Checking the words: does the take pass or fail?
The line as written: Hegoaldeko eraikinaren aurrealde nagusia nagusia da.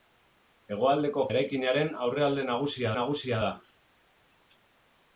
pass